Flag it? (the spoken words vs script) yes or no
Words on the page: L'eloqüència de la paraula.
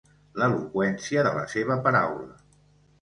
yes